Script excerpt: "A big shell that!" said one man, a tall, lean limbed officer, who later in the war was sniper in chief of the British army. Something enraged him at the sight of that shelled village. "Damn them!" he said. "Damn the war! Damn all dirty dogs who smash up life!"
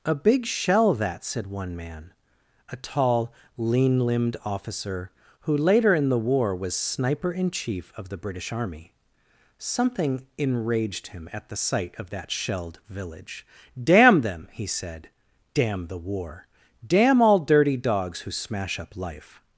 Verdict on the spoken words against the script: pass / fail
pass